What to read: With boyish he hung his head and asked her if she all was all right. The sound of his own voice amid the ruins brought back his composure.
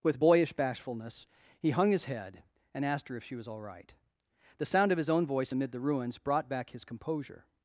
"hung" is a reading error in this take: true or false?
false